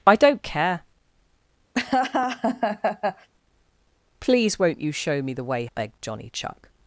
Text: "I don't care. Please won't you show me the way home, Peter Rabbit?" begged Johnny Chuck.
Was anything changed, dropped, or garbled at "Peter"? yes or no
yes